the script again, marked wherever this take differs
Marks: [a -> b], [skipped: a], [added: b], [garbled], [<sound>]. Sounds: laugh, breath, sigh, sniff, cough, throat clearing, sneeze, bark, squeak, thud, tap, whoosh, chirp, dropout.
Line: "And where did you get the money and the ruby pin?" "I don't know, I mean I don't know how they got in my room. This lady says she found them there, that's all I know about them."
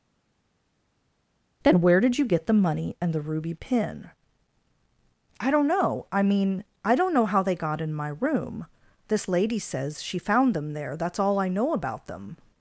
["And -> Then] where did you get the money and the ruby pin?" "I don't know, I mean I don't know how they got in my room. This lady says she found them there, that's all I know about them."